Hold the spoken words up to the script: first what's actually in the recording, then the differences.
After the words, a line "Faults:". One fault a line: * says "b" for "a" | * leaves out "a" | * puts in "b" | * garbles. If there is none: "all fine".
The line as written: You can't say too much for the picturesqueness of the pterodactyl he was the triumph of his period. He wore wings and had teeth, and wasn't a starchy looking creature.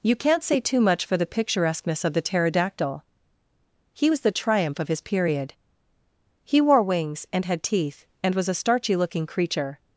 You can't say too much for the picturesqueness of the pterodactyl he was the triumph of his period. He wore wings and had teeth, and was a starchy looking creature.
Faults:
* says "was" for "wasn't"